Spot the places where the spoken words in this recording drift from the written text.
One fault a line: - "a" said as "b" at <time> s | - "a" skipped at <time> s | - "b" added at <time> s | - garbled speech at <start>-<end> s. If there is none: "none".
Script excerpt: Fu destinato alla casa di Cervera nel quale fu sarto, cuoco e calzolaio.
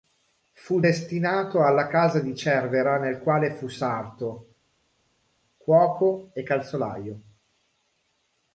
none